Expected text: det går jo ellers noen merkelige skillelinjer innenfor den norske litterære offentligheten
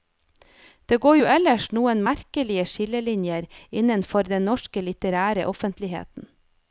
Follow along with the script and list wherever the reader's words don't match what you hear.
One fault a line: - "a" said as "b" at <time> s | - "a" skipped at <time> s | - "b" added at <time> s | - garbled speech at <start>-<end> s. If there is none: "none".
none